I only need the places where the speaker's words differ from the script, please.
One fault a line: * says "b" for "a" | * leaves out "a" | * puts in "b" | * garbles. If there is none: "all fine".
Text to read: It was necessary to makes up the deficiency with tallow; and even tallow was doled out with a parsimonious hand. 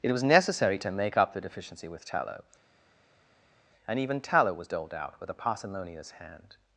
* says "make" for "makes"